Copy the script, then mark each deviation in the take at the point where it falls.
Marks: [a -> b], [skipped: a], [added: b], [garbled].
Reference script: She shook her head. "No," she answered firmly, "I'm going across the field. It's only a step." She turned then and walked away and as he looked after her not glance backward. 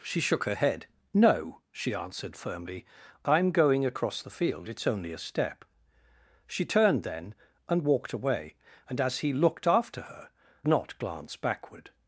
She shook her head. "No," she answered firmly, "I'm going across the field. It's only a step." She turned then and walked away and as he looked after her not glance backward.